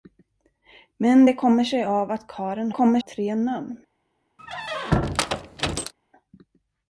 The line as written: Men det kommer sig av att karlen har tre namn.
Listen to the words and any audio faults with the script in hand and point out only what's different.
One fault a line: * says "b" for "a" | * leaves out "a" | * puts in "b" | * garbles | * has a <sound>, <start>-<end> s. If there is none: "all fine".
* says "kommer" for "har"
* has a squeak, 4.4-5.9 s